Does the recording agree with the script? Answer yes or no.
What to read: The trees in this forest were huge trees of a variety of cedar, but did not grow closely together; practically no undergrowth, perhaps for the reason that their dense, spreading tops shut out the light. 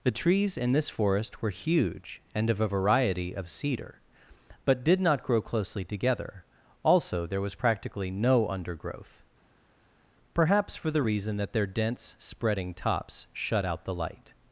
no